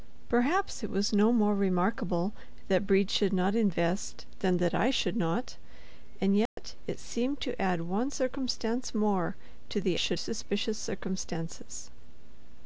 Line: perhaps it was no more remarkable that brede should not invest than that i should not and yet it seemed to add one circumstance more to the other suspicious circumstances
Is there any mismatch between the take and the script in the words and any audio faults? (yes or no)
yes